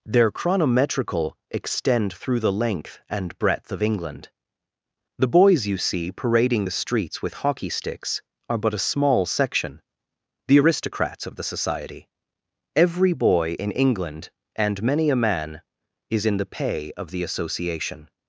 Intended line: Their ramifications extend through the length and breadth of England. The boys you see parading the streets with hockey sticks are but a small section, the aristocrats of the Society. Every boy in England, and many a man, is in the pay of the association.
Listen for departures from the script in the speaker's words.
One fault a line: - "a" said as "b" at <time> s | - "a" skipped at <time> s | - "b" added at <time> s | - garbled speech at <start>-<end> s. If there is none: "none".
- "ramifications" said as "chronometrical" at 0.3 s